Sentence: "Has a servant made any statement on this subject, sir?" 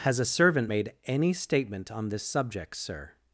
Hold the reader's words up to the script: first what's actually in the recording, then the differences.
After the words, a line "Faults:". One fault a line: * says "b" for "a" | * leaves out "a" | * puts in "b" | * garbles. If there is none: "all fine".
"Has a servant made any statement on this subject, sir?"
Faults:
all fine